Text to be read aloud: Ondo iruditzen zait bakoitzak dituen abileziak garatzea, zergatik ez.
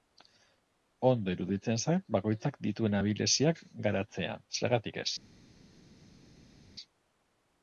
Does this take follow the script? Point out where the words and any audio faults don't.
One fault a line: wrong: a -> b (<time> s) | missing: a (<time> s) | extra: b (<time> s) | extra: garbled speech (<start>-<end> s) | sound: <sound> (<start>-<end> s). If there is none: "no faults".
no faults